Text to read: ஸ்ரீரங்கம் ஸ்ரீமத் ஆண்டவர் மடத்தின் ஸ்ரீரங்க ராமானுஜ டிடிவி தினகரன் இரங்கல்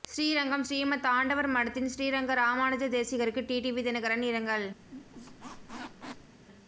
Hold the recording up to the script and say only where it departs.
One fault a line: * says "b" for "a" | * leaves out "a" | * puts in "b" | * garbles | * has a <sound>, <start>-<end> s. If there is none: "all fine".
* puts in "தேசிகருக்கு"
* has a squeak, 4.8-6.4 s